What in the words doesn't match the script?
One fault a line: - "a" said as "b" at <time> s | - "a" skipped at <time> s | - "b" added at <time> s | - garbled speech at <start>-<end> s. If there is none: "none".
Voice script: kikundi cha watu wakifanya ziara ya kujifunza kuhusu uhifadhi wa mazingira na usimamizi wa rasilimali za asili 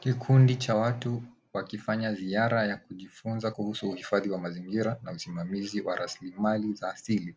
none